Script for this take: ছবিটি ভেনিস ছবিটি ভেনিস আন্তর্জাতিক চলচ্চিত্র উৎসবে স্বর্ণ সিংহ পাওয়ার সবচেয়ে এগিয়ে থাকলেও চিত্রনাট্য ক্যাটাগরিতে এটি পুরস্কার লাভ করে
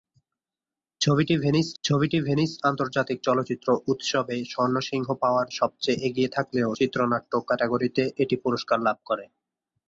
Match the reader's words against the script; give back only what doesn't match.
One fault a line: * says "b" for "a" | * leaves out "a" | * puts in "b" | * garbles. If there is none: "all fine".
all fine